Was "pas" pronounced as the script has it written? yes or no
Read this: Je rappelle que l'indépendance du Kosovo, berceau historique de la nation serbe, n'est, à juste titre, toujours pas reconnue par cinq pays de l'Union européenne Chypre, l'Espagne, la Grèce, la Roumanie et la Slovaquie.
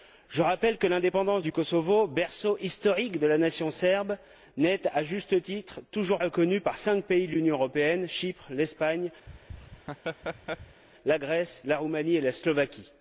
no